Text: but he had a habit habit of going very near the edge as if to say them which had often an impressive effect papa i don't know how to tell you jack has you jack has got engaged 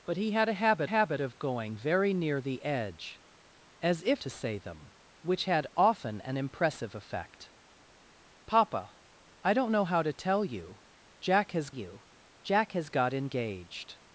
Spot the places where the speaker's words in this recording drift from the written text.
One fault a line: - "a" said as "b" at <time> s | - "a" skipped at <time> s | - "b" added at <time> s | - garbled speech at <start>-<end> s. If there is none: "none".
none